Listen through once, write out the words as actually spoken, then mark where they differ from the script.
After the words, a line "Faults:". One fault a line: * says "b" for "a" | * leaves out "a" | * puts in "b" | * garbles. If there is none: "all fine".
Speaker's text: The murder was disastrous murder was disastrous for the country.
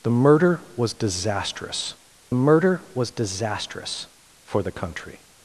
The murder was disastrous murder was disastrous for the country.
Faults:
all fine